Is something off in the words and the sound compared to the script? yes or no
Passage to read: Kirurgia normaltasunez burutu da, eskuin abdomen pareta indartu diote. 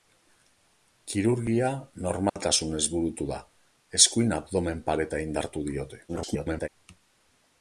yes